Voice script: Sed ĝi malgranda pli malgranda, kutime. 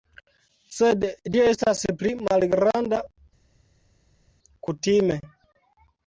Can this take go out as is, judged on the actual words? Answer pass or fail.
fail